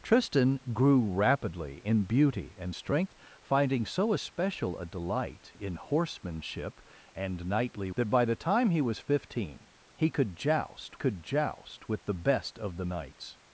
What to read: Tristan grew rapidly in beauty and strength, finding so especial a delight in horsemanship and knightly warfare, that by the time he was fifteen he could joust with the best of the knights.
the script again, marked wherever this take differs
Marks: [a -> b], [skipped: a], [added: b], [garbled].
Tristan grew rapidly in beauty and strength, finding so especial a delight in horsemanship and knightly [skipped: warfare,] that by the time he was fifteen he could joust [added: could joust] with the best of the knights.